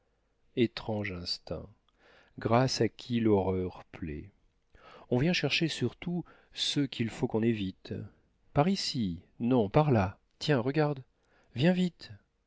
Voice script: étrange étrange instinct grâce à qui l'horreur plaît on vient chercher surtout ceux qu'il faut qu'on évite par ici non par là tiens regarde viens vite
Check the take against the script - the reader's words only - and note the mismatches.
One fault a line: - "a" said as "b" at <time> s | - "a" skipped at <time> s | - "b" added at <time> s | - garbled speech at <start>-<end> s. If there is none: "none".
- "étrange" skipped at 1.1 s